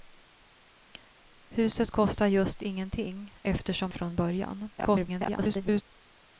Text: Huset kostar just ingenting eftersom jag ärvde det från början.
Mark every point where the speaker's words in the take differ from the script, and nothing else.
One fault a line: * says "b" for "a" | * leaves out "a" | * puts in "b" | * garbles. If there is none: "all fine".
* leaves out "jag ärvde det"
* garbles